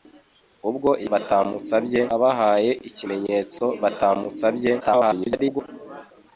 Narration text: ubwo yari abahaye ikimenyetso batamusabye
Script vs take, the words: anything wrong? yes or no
yes